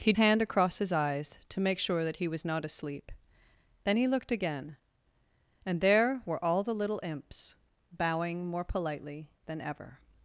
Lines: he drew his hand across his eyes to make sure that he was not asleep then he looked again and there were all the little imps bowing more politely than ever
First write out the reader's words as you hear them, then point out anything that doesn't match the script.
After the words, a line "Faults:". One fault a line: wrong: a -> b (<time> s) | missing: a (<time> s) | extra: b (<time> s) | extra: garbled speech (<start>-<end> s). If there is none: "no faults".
he hand across his eyes to make sure that he was not asleep then he looked again and there were all the little imps bowing more politely than ever
Faults:
missing: drew his (0.1 s)